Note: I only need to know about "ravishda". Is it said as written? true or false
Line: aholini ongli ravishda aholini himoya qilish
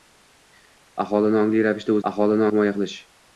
true